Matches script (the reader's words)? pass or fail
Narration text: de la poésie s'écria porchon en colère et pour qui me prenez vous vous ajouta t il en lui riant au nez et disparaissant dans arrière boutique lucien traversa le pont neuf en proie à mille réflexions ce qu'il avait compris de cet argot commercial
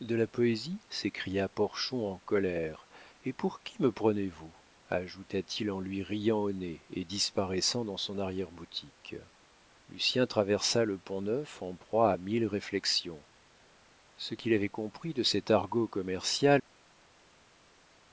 fail